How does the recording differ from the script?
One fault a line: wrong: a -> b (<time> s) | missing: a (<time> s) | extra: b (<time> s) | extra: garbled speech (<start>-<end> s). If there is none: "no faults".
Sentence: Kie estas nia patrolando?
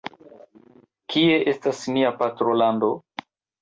no faults